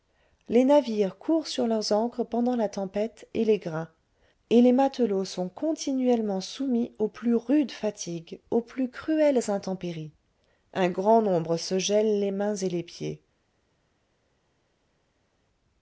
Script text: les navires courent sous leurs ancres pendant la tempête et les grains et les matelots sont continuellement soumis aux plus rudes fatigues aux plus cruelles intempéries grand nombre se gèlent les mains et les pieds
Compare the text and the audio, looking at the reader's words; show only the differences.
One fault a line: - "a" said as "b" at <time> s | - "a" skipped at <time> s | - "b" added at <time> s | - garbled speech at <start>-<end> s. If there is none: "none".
- "sous" said as "sur" at 1.4 s
- "un" added at 10.7 s